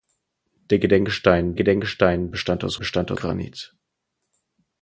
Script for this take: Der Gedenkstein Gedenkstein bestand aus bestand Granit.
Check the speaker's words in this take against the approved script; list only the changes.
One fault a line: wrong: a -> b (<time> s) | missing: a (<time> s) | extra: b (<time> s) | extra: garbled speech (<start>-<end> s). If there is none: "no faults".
no faults